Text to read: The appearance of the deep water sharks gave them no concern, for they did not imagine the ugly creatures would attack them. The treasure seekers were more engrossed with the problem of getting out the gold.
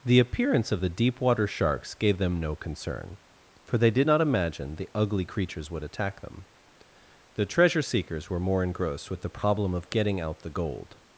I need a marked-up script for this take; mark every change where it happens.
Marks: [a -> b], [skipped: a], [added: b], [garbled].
The appearance of the deep water sharks gave them no concern, for they did not imagine the ugly creatures would attack them. The treasure seekers were more engrossed with the problem of getting out the gold.